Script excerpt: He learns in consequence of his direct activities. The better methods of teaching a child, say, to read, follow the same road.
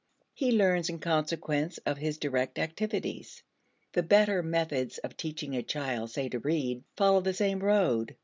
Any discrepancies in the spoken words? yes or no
no